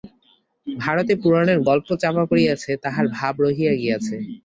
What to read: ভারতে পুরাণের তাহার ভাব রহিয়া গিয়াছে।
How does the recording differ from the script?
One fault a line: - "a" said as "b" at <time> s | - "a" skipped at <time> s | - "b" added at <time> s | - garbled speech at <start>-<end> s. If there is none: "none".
- "গল্প চাপা পড়িয়াছে" added at 1.7 s